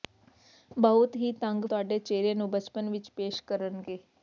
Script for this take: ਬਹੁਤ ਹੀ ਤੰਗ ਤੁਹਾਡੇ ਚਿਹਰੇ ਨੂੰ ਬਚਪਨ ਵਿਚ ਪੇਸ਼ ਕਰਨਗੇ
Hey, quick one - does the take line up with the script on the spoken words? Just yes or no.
yes